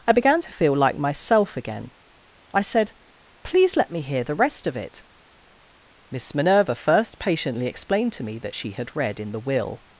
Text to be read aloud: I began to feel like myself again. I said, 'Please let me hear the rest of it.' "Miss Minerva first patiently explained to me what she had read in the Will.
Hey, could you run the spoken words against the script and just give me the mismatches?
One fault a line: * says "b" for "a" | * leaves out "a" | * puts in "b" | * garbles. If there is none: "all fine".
* says "that" for "what"